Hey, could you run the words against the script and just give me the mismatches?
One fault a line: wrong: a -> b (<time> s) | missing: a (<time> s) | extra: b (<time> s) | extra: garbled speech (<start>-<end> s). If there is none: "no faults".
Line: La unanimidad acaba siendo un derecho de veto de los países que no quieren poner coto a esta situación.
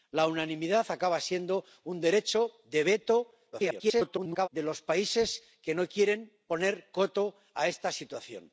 extra: garbled speech (3.5-4.5 s)